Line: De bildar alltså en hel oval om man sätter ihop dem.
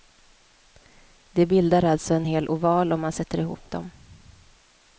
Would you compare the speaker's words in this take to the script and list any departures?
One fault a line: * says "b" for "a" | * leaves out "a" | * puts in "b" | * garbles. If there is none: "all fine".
all fine